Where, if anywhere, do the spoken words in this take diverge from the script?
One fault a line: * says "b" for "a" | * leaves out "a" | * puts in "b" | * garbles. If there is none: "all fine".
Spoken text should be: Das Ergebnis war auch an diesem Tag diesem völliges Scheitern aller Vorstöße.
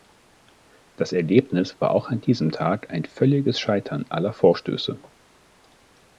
* says "ein" for "diesem"